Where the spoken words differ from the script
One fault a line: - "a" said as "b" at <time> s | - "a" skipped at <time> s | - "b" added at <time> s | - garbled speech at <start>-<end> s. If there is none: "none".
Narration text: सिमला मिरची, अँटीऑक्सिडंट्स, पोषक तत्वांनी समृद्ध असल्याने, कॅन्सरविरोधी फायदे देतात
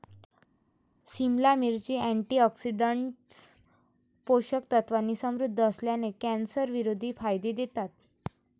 none